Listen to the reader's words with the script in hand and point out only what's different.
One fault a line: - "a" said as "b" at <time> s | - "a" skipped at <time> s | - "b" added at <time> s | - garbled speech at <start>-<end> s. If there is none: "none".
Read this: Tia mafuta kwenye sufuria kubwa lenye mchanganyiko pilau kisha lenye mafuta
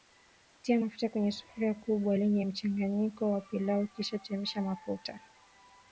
- "wa" added at 3.3 s
- "lenye" said as "chemsha" at 4.2 s